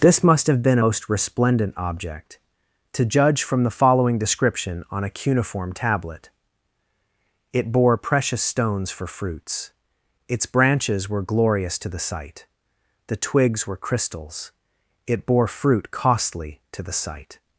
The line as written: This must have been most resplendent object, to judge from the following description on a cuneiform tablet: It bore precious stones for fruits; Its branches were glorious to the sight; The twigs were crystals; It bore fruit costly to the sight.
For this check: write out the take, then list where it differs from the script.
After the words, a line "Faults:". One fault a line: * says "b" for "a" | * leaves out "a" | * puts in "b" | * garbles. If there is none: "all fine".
This must have been most resplendent object, to judge from the following description on a cuneiform tablet: It bore precious stones for fruits; Its branches were glorious to the sight; The twigs were crystals; It bore fruit costly to the sight.
Faults:
all fine